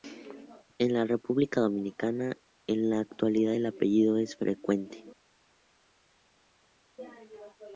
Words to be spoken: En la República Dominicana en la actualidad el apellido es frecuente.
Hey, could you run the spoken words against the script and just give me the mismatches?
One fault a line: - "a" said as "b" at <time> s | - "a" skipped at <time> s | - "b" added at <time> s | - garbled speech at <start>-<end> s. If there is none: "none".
none